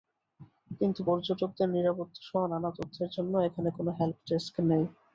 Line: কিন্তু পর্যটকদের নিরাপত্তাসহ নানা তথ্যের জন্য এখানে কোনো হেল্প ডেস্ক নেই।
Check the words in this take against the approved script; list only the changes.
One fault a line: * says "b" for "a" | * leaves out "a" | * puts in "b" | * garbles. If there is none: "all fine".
all fine